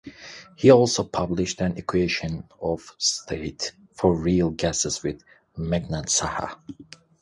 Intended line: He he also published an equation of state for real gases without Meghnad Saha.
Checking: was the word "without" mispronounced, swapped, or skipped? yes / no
yes